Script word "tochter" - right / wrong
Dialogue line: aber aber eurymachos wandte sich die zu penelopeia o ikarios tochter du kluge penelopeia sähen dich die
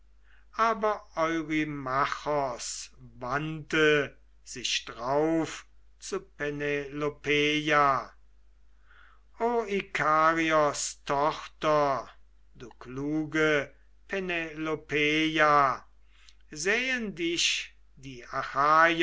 right